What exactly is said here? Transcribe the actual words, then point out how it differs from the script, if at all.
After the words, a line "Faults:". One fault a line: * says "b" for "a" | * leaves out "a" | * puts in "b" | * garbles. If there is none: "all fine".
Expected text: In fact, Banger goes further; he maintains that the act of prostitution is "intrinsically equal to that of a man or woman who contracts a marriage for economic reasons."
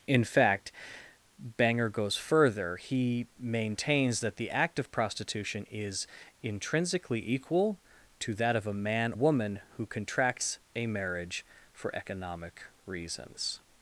In fact, Banger goes further; he maintains that the act of prostitution is "intrinsically equal to that of a man woman who contracts a marriage for economic reasons."
Faults:
* leaves out "or"